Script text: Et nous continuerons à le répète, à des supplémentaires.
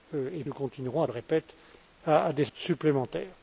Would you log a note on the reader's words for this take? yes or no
no